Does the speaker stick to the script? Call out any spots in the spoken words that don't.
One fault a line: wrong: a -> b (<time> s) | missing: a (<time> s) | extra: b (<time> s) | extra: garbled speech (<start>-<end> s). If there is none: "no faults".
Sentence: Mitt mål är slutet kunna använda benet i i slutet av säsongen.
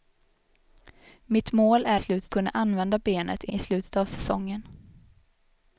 no faults